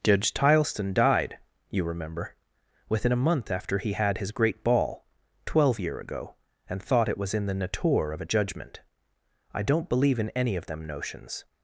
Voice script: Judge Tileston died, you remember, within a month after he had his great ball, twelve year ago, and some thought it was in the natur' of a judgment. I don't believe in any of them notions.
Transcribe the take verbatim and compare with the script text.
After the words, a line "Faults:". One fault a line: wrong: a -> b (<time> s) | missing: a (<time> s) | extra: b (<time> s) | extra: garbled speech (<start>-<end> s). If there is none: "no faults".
Judge Tileston died, you remember, within a month after he had his great ball, twelve year ago, and thought it was in the natur' of a judgment. I don't believe in any of them notions.
Faults:
missing: some (6.8 s)